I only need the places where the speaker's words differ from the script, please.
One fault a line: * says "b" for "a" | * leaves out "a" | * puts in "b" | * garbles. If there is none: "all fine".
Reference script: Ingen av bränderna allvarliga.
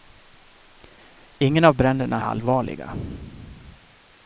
all fine